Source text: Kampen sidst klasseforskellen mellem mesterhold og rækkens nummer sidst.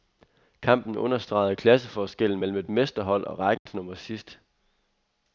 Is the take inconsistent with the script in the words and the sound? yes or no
yes